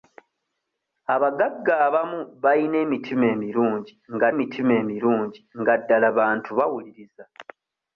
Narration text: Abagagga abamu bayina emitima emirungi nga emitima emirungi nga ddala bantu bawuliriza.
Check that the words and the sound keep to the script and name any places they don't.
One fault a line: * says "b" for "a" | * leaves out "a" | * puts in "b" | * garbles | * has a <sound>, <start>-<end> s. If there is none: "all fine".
all fine